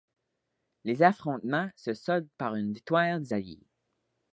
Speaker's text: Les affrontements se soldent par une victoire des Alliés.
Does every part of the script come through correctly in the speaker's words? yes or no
yes